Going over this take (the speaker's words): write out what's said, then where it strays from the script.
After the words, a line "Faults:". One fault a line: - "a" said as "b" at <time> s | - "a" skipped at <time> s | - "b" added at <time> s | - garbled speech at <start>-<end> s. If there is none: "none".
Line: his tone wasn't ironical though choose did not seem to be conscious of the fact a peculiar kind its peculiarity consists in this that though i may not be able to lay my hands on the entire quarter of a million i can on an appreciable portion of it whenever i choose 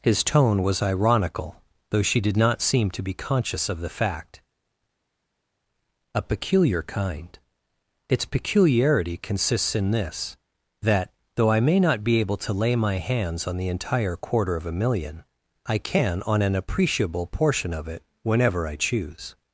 his tone was ironical though she did not seem to be conscious of the fact a peculiar kind its peculiarity consists in this that though i may not be able to lay my hands on the entire quarter of a million i can on an appreciable portion of it whenever i choose
Faults:
- "wasn't" said as "was" at 0.6 s
- "choose" said as "she" at 2.0 s